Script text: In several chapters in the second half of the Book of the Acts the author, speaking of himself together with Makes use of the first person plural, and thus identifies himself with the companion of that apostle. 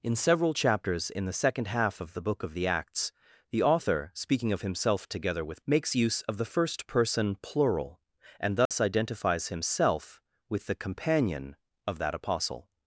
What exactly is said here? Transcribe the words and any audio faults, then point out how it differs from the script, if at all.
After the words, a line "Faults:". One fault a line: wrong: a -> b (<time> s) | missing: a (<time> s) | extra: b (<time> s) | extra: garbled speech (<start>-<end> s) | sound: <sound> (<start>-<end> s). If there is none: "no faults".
In several chapters in the second half of the Book of the Acts the author, speaking of himself together with Makes use of the first person plural, and thus identifies himself with the companion of that apostle.
Faults:
sound: dropout (8.7-8.7 s)